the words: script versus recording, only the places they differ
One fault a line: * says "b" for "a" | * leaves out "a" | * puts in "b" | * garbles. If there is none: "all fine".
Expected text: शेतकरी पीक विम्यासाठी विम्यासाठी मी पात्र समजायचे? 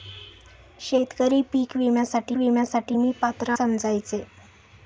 all fine